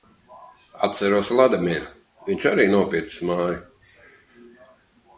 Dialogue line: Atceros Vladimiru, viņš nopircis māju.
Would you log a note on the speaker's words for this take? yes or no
yes